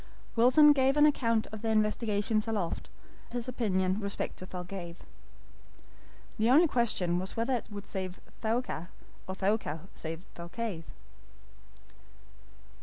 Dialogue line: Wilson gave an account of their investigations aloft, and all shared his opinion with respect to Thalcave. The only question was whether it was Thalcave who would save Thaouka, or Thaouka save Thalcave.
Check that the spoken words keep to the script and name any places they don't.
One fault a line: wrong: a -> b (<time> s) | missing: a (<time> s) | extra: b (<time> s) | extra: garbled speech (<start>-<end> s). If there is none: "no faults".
missing: and all shared (2.9 s)
missing: with (4.0 s)
missing: was Thalcave who (7.7 s)